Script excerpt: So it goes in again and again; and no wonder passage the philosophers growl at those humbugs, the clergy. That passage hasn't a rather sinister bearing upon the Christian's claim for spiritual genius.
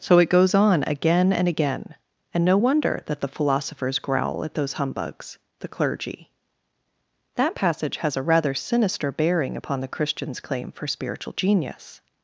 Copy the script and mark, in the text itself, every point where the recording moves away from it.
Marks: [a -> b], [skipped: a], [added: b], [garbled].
So it goes [in -> on] again and again; and no wonder [passage -> that] the philosophers growl at those humbugs, the clergy. That passage [hasn't -> has] a rather sinister bearing upon the Christian's claim for spiritual genius.